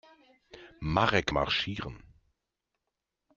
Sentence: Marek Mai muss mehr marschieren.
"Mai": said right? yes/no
no